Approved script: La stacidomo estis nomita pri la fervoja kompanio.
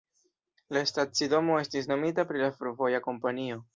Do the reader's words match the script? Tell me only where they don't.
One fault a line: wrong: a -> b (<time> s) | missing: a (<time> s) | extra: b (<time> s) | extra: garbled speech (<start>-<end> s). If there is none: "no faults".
no faults